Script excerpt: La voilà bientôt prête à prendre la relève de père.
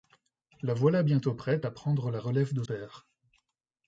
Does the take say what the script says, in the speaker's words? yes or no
yes